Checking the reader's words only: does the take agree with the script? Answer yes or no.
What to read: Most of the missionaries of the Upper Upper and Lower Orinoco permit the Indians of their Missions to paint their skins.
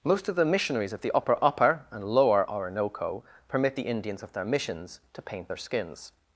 yes